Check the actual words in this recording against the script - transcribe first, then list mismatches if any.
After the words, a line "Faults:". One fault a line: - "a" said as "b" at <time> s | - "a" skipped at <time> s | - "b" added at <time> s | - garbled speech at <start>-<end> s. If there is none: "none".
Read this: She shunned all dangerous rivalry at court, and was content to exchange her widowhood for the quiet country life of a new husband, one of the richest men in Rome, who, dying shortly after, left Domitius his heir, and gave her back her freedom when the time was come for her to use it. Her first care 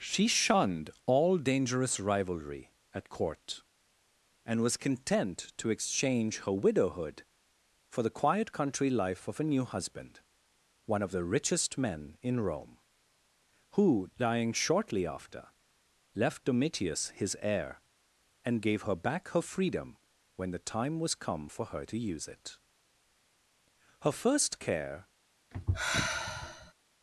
She shunned all dangerous rivalry at court, and was content to exchange her widowhood for the quiet country life of a new husband, one of the richest men in Rome, who, dying shortly after, left Domitius his heir, and gave her back her freedom when the time was come for her to use it. Her first care
Faults:
none